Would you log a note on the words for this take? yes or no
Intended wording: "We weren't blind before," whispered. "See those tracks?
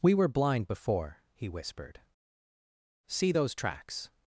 yes